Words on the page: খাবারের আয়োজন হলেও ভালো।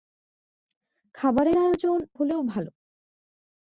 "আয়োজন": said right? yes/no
yes